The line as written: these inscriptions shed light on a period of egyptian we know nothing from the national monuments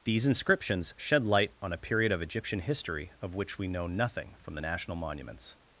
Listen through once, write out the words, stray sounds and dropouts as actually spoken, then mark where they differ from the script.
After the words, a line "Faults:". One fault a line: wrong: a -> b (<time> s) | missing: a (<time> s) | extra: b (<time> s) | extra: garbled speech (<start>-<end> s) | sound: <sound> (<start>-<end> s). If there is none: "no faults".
these inscriptions shed light on a period of egyptian history of which we know nothing from the national monuments
Faults:
extra: history of which (2.6 s)